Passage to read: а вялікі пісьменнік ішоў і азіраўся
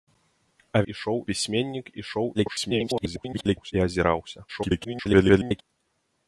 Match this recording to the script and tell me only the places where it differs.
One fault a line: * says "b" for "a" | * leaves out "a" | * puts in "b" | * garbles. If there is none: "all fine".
* says "ішоў" for "вялікі"
* garbles
* garbles